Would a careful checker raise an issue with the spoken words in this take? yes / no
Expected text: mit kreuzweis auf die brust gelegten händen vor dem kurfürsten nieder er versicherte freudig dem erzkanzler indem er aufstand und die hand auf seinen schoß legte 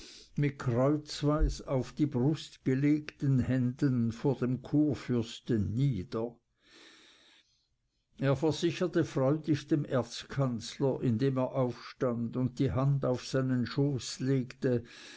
no